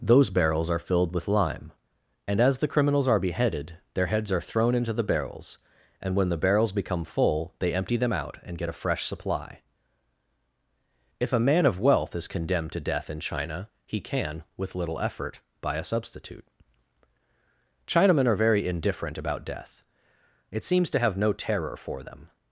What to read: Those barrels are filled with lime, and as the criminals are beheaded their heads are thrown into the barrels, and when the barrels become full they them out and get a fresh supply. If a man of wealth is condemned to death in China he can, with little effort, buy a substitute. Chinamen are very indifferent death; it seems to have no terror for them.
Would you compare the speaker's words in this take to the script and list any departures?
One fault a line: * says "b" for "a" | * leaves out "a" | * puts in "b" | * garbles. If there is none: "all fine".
* puts in "empty"
* puts in "about"